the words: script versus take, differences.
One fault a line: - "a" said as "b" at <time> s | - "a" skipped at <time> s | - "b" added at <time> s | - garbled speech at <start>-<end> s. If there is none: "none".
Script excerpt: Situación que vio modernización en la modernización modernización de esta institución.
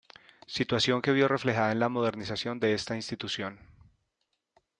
- "modernización" said as "reflejada" at 1.3 s
- "modernización" skipped at 2.6 s